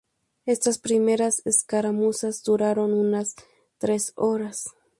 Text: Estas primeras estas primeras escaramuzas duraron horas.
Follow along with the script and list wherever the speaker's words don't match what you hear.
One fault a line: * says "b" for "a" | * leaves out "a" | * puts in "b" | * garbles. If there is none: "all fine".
* says "escaramuzas duraron unas tres" for "estas primeras escaramuzas duraron"